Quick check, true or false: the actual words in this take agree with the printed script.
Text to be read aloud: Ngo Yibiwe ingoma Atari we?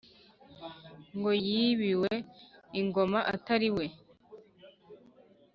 true